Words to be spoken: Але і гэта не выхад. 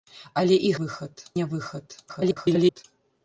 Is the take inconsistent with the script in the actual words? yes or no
yes